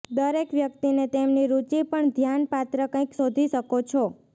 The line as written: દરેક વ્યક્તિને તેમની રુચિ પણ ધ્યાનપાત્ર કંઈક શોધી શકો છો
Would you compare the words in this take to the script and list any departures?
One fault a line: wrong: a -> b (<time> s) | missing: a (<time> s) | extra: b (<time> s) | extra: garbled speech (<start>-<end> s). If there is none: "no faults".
no faults